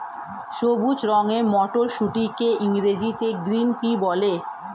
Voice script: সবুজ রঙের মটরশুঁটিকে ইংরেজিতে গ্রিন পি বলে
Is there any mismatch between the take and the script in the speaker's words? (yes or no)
no